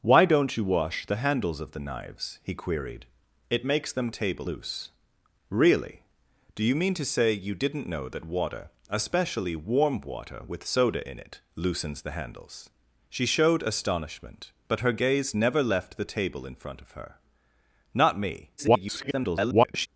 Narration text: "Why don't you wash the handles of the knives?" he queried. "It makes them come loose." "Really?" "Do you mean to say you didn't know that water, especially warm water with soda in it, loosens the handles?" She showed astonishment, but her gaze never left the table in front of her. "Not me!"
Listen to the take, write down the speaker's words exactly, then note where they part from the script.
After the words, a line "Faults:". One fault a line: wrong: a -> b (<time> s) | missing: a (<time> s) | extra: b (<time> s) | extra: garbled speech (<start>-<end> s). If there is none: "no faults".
"Why don't you wash the handles of the knives?" he queried. "It makes them table loose." "Really?" "Do you mean to say you didn't know that water, especially warm water with soda in it, loosens the handles?" She showed astonishment, but her gaze never left the table in front of her. "Not me!" [garbled]
Faults:
wrong: come -> table (4.1 s)
extra: garbled speech (18.6-19.9 s)